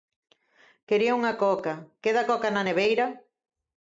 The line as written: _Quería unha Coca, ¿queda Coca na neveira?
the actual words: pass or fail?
pass